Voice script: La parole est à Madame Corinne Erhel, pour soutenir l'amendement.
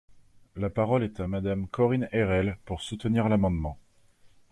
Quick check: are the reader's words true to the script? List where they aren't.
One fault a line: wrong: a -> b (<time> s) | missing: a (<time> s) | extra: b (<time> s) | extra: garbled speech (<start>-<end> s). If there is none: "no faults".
no faults